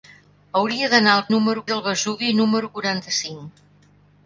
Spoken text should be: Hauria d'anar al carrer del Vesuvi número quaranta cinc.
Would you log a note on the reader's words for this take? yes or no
yes